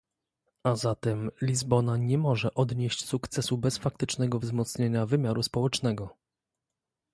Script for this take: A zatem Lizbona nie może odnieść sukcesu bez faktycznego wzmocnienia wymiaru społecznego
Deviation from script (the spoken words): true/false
false